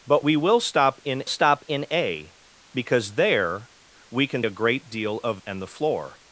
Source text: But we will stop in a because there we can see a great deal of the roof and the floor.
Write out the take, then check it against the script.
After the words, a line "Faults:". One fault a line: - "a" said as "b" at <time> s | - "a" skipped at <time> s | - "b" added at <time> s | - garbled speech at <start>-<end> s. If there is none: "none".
But we will stop in stop in a because there we can a great deal of and the floor.
Faults:
- "stop in" added at 1.3 s
- "see" skipped at 4.4 s
- "the roof" skipped at 5.4 s